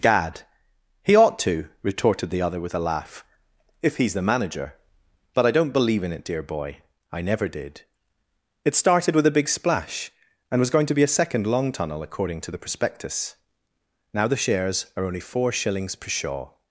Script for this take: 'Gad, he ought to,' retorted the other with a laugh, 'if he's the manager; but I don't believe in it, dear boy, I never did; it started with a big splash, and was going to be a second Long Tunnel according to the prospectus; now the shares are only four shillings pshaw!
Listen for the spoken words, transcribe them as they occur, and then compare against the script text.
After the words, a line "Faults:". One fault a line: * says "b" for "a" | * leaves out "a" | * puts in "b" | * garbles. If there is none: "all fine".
'Gad, he ought to,' retorted the other with a laugh, 'if he's the manager; but I don't believe in it, dear boy, I never did; it started with a big splash, and was going to be a second Long Tunnel according to the prospectus; now the shares are only four shillings per shaw!
Faults:
* says "per shaw" for "pshaw"